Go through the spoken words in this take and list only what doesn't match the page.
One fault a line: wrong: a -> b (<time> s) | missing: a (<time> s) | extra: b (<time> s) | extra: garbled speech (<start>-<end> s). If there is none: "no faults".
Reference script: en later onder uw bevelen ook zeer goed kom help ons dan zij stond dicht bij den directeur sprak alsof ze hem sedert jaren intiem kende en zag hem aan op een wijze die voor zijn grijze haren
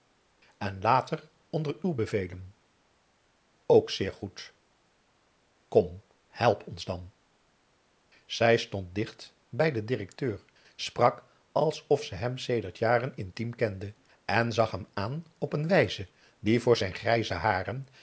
no faults